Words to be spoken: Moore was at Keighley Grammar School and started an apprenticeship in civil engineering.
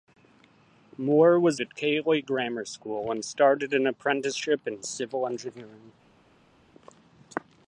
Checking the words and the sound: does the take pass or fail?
pass